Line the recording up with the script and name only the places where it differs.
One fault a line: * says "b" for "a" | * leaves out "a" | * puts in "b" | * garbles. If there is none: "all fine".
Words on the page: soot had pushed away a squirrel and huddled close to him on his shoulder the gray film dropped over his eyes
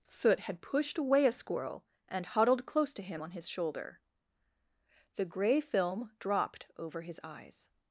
all fine